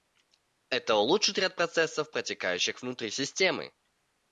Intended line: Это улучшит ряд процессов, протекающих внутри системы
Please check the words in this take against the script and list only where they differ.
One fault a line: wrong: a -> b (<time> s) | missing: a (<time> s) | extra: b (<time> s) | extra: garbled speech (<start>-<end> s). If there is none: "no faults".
no faults